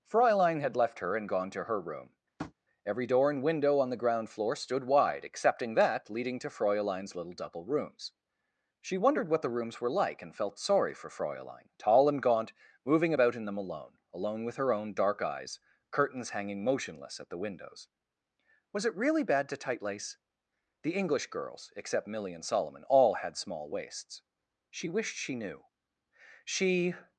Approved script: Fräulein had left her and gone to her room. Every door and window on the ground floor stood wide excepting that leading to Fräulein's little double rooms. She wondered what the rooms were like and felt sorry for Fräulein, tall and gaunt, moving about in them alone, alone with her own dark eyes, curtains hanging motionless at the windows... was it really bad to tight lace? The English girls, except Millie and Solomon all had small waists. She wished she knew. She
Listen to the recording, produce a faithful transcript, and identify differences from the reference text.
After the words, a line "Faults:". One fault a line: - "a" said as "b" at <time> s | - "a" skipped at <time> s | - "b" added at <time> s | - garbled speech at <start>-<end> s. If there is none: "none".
Fräulein had left her and gone to her room. Every door and window on the ground floor stood wide excepting that leading to Fräulein's little double rooms. She wondered what the rooms were like and felt sorry for Fräulein, tall and gaunt, moving about in them alone, alone with her own dark eyes, curtains hanging motionless at the windows... was it really bad to tight lace? The English girls, except Millie and Solomon all had small waists. She wished she knew. She
Faults:
none